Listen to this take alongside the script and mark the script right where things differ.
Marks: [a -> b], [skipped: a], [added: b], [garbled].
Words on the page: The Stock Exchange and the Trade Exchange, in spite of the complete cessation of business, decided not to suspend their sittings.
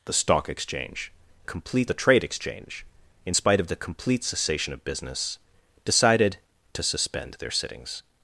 The Stock Exchange [and -> complete] the Trade Exchange, in spite of the complete cessation of business, decided [skipped: not] to suspend their sittings.